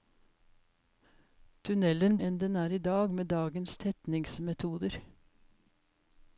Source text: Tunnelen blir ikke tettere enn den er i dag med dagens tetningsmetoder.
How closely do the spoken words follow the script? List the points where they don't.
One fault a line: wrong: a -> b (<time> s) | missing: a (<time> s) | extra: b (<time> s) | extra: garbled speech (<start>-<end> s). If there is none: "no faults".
missing: blir ikke tettere (2.2 s)